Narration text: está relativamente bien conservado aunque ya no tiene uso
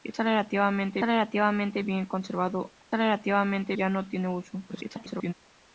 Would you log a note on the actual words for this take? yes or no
yes